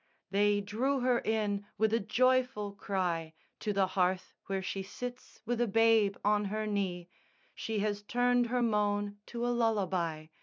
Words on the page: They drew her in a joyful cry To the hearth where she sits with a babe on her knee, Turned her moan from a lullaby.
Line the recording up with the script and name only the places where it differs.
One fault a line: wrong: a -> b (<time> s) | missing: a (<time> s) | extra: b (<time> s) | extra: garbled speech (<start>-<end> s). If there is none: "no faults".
extra: with (1.8 s)
extra: She has (7.5 s)
wrong: from -> to (9.2 s)